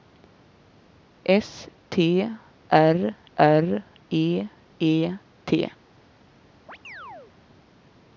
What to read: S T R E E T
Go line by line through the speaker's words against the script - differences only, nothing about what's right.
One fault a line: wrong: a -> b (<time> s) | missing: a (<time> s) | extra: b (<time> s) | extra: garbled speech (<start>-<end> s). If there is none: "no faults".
extra: R (3.4 s)